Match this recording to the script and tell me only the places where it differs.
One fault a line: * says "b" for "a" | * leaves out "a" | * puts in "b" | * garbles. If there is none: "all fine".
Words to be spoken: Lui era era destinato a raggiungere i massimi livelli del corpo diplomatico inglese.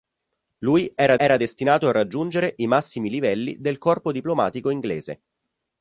all fine